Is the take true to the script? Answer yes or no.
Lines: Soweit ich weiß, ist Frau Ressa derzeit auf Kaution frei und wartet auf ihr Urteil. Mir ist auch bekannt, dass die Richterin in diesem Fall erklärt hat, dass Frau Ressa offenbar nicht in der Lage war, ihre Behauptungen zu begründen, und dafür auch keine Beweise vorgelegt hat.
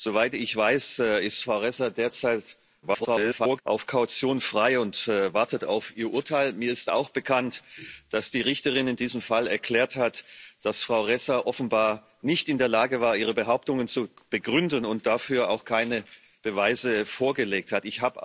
no